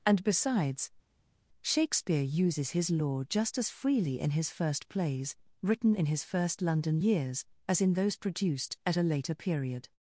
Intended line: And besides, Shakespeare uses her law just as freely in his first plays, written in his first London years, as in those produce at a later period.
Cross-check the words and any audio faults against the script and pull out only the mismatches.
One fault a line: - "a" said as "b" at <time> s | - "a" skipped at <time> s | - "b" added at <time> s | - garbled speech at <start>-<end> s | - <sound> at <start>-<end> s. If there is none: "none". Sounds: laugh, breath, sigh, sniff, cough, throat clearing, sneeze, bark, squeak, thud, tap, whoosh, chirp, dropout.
- "her" said as "his" at 2.7 s
- "produce" said as "produced" at 8.2 s